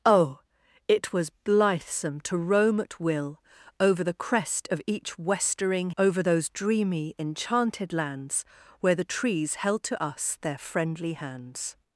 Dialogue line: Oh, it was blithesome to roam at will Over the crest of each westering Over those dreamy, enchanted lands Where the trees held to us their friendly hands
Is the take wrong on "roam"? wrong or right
right